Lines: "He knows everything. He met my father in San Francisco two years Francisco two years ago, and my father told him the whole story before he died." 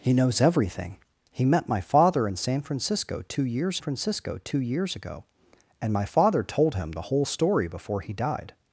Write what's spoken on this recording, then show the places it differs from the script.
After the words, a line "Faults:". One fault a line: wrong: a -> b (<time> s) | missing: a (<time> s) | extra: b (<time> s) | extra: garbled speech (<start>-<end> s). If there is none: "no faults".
"He knows everything. He met my father in San Francisco two years Francisco two years ago, and my father told him the whole story before he died."
Faults:
no faults